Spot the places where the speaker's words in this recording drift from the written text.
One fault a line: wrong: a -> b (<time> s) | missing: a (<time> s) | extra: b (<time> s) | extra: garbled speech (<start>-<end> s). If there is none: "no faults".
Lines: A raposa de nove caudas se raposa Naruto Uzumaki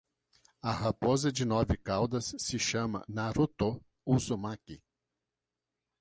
wrong: raposa -> chama (2.6 s)